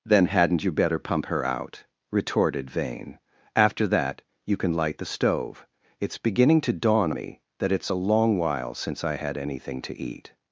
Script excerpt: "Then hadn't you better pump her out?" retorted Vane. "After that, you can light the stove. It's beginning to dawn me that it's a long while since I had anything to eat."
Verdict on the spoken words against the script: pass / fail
pass